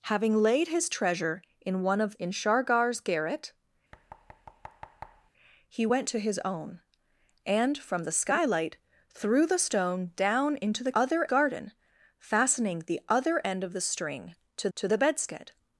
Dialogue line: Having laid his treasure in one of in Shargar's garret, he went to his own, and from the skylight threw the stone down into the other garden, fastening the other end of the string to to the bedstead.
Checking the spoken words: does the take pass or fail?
pass